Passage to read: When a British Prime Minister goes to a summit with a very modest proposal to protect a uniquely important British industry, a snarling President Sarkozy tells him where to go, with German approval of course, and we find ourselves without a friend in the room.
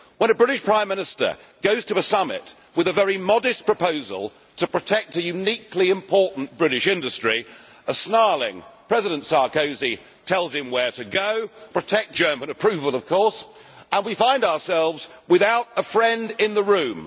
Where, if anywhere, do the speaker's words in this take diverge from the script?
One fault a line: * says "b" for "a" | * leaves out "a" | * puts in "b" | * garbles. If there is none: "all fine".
* says "protect" for "with"